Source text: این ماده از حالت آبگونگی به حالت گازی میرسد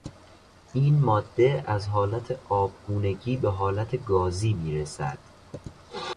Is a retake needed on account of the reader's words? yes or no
no